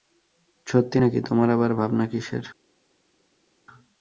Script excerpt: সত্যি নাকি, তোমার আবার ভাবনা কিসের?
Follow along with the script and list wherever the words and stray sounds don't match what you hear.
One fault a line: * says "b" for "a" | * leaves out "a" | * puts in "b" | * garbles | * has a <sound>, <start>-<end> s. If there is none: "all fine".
all fine